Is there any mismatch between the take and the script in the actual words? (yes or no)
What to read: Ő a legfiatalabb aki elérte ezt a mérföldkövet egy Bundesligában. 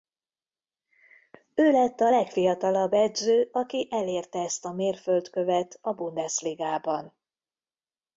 yes